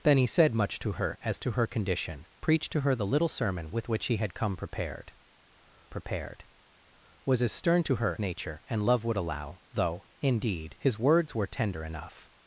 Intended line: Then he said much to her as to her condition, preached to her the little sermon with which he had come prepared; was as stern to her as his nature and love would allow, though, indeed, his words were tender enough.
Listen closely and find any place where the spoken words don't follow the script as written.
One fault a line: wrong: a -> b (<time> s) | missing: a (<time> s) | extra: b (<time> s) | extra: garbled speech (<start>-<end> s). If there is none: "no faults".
extra: prepared (5.9 s)
missing: as his (8.2 s)